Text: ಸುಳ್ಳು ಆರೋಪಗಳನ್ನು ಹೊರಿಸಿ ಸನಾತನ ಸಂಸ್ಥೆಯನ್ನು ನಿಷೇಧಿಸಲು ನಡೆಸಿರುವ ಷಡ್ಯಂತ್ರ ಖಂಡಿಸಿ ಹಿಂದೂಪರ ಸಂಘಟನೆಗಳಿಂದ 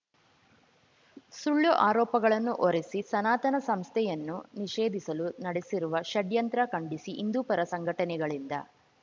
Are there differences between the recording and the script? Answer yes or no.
no